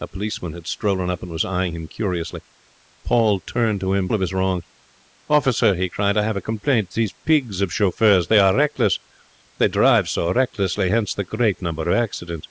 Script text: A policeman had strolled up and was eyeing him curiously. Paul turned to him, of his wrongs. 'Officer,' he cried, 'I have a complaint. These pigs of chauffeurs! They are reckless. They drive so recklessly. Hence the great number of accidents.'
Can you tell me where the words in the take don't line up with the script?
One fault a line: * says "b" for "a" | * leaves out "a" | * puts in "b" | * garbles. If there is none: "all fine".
all fine